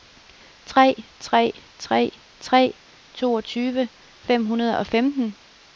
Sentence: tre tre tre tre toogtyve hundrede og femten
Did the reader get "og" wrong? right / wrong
right